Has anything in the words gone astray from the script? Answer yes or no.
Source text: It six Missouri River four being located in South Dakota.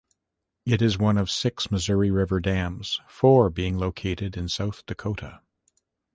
yes